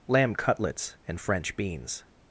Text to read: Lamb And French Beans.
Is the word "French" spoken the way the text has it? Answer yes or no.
yes